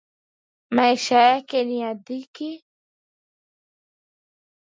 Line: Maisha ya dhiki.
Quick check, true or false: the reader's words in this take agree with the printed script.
false